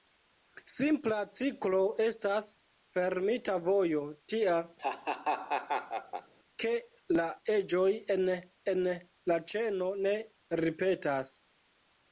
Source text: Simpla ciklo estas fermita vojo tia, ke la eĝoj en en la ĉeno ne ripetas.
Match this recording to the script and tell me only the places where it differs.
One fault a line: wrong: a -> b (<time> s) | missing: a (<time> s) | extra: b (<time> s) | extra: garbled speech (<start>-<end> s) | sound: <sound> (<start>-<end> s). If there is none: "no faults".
sound: laugh (4.8-6.3 s)